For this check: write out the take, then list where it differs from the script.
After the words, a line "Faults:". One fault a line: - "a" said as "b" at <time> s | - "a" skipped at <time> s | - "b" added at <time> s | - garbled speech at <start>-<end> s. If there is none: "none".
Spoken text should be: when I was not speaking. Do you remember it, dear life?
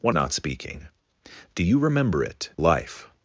when not speaking. Do you remember it, life?
Faults:
- "I was" skipped at 0.1 s
- "dear" skipped at 2.5 s